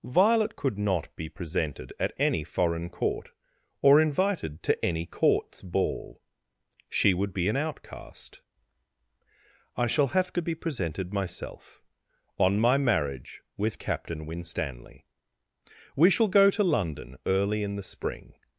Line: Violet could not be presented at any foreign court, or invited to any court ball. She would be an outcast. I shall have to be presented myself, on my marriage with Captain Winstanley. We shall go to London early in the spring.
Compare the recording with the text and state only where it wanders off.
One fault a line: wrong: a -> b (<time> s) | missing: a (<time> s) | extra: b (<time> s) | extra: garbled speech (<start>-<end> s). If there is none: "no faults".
wrong: court -> courts (5.0 s)